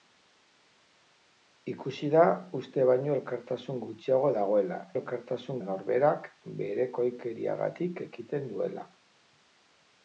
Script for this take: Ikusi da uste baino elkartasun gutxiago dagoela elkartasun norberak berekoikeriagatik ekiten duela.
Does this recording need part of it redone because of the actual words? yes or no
no